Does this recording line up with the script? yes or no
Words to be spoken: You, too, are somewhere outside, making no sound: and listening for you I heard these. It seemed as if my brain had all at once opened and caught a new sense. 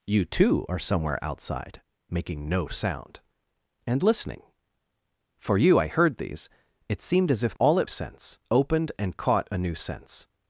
no